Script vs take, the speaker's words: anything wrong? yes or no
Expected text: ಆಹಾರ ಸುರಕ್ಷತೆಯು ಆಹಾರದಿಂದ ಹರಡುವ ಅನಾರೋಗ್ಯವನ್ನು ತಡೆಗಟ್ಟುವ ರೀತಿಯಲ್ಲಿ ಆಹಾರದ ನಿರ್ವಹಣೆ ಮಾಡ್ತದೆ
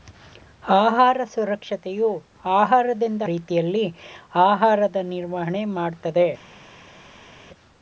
yes